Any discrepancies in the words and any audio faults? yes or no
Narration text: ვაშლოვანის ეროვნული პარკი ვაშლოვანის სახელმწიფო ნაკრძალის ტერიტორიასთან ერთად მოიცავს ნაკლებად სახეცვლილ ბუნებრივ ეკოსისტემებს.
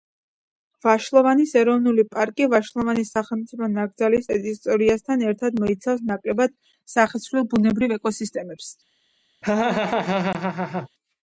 yes